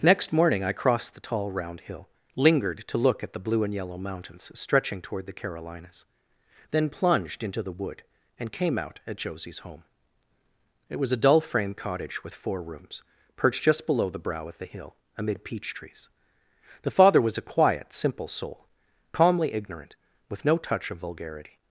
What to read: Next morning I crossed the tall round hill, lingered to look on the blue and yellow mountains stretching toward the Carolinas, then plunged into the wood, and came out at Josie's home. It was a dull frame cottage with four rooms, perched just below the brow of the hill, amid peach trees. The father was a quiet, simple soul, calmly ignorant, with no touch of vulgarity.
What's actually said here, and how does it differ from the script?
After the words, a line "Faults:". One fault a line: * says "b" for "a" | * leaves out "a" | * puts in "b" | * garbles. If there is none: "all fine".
Next morning I crossed the tall round hill, lingered to look at the blue and yellow mountains stretching toward the Carolinas, then plunged into the wood, and came out at Josie's home. It was a dull frame cottage with four rooms, perched just below the brow of the hill, amid peach trees. The father was a quiet, simple soul, calmly ignorant, with no touch of vulgarity.
Faults:
* says "at" for "on"